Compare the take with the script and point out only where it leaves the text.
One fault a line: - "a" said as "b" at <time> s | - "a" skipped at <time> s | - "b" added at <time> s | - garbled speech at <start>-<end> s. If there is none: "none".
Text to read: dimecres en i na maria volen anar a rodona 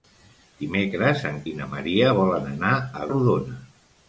none